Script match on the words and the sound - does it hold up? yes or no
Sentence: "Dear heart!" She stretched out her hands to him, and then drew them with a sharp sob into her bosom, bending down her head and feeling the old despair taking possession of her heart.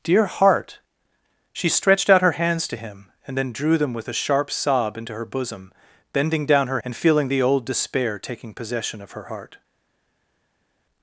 no